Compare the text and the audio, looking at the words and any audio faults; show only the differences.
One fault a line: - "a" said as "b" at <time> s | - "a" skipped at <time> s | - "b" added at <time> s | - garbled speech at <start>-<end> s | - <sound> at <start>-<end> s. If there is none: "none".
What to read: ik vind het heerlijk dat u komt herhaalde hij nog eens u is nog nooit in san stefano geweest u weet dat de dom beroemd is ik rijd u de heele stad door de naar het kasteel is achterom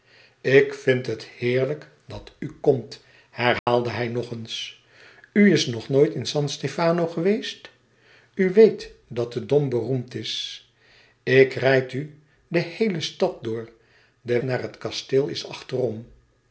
- dropout at 3.6-3.7 s